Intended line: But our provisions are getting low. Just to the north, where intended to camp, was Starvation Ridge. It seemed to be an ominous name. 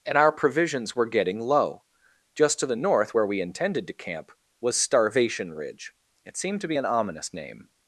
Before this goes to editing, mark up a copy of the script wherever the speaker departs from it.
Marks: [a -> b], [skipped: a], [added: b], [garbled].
[But -> And] our provisions [are -> were] getting low. Just to the north, where [added: we] intended to camp, was Starvation Ridge. It seemed to be an ominous name.